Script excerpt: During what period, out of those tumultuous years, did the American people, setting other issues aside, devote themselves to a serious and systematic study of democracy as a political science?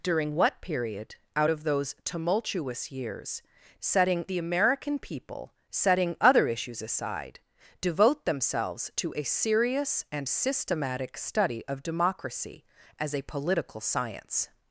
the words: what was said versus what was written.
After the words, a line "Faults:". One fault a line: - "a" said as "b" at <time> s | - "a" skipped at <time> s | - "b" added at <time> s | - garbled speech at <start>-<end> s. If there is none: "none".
During what period, out of those tumultuous years, setting the American people, setting other issues aside, devote themselves to a serious and systematic study of democracy as a political science?
Faults:
- "did" said as "setting" at 3.8 s